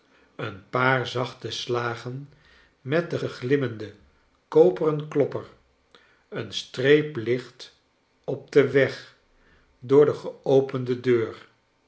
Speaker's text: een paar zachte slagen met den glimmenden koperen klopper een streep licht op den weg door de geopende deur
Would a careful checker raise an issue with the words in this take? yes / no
yes